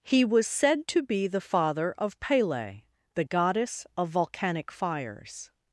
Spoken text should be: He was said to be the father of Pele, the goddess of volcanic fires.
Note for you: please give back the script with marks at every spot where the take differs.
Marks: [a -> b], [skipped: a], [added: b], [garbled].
He was said to be the father of Pele, the goddess of volcanic fires.